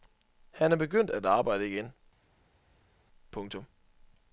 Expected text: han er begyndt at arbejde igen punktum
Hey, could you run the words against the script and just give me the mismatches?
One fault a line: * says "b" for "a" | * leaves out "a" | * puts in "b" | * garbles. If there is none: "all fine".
all fine